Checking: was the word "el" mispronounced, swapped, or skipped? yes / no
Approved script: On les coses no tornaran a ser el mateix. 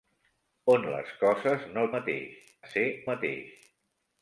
yes